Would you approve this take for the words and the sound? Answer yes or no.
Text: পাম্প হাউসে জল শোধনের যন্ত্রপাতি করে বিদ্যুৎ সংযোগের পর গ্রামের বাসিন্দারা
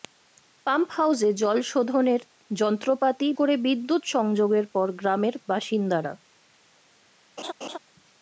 no